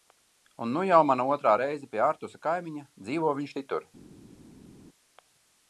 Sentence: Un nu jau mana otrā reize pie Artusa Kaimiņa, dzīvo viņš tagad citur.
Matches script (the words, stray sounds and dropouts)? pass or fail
fail